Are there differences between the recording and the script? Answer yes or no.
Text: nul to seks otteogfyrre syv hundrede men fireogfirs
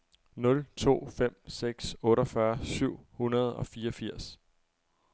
yes